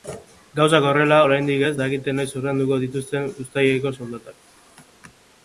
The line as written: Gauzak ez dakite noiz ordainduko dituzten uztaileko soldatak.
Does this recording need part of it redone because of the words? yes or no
yes